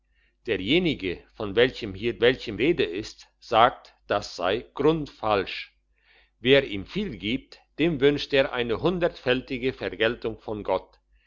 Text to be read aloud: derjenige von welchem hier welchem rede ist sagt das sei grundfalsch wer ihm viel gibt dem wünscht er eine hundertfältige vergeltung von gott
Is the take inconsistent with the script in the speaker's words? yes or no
no